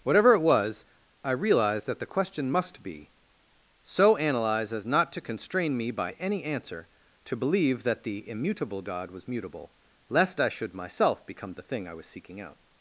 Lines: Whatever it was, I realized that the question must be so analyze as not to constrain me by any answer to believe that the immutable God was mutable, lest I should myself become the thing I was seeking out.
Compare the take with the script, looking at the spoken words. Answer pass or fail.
pass